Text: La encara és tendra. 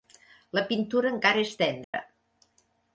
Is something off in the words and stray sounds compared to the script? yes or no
yes